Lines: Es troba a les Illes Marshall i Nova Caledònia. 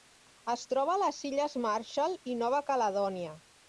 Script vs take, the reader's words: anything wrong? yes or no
no